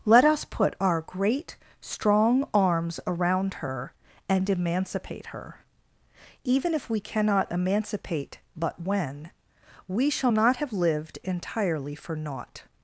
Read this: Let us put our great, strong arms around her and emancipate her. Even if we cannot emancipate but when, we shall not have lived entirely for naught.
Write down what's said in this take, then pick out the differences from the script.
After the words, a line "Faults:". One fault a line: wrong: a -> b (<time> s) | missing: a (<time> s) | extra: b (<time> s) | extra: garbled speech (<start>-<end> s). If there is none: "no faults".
Let us put our great, strong arms around her and emancipate her. Even if we cannot emancipate but when, we shall not have lived entirely for naught.
Faults:
no faults